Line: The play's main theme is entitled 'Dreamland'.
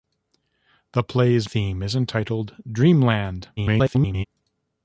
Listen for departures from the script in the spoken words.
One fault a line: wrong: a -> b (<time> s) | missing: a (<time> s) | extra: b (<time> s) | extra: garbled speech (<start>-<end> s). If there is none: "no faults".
missing: main (1.5 s)
extra: garbled speech (3.6-4.2 s)